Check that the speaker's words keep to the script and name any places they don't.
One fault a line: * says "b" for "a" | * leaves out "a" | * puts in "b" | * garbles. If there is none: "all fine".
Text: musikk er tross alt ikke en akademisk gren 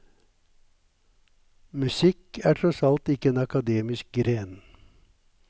all fine